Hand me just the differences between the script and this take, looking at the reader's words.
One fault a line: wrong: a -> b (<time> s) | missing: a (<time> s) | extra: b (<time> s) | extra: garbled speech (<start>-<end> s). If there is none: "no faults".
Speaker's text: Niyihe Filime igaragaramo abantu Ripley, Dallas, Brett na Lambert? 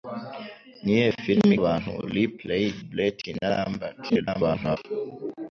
missing: igaragaramo (1.5 s)
missing: Dallas (2.6 s)
extra: garbled speech (4.1-4.8 s)